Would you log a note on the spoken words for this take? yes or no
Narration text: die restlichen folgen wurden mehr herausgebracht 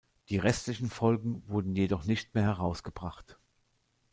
yes